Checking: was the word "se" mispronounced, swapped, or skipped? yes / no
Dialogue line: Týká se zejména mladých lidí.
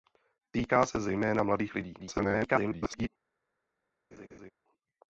no